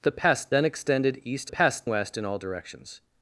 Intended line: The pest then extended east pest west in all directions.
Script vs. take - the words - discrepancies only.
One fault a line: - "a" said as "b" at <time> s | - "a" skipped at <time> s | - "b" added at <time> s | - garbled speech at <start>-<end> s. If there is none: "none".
none